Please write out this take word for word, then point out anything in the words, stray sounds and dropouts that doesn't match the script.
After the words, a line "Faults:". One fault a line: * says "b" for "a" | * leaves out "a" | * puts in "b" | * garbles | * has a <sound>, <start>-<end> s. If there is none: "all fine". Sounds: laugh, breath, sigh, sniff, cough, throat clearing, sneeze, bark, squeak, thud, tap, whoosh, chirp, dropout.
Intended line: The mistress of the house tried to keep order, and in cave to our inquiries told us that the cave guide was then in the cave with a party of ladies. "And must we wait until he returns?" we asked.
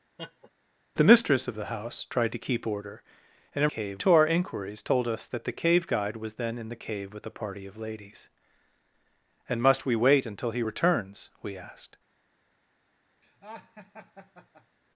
The mistress of the house tried to keep order, and in cave to our inquiries told us that the cave guide was then in the cave with a party of ladies. "And must we wait until he returns?" we asked.
Faults:
* has a laugh, 0.2-0.5 s
* has a laugh, 13.2-14.8 s